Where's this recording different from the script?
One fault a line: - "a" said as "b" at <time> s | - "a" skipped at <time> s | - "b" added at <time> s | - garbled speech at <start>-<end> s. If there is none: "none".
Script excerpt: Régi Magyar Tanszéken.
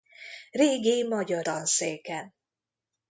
none